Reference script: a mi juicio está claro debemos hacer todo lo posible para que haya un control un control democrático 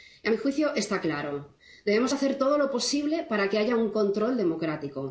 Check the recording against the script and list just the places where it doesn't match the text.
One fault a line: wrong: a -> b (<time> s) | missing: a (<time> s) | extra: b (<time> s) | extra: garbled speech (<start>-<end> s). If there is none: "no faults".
missing: un control (4.4 s)